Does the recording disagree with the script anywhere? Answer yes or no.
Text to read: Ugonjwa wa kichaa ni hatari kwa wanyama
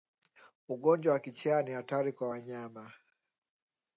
no